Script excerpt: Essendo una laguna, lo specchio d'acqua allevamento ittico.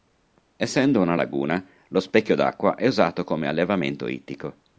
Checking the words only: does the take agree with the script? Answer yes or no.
no